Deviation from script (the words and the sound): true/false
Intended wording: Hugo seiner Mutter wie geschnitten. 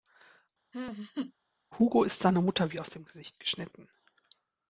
true